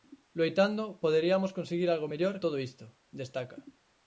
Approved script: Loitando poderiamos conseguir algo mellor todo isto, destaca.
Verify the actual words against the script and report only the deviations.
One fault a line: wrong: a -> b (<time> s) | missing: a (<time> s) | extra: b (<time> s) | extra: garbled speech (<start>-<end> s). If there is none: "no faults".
no faults